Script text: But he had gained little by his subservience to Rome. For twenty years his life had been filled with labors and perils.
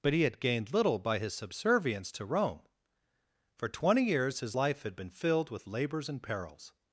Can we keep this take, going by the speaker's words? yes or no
yes